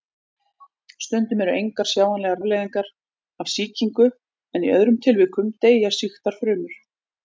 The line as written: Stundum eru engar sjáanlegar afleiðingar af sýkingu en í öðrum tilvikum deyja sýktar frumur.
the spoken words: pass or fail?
pass